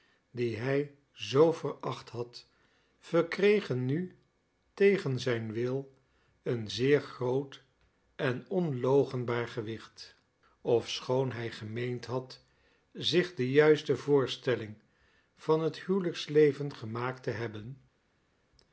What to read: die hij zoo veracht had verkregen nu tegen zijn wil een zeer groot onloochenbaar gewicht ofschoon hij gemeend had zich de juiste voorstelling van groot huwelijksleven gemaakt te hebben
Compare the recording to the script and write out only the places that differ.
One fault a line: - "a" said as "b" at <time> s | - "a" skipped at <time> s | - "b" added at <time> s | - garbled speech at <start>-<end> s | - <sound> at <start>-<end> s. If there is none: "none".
- "en" added at 8.1 s
- "groot" said as "het" at 15.6 s